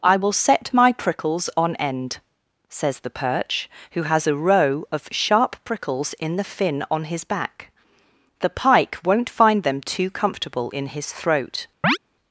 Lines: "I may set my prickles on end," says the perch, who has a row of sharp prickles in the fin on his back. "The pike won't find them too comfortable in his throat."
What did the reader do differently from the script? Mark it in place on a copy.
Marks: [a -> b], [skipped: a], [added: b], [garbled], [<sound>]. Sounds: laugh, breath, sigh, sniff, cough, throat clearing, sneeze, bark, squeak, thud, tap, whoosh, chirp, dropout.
"I [may -> will] set my prickles on end," says the perch, who has a row of sharp prickles in the fin on his back. "The pike won't find them too comfortable in his throat." [chirp]